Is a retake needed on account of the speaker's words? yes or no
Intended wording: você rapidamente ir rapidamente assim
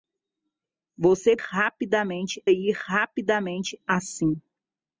no